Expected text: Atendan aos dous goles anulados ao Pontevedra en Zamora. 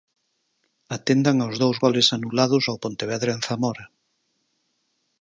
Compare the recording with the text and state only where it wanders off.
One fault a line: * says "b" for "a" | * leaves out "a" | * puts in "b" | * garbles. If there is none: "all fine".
all fine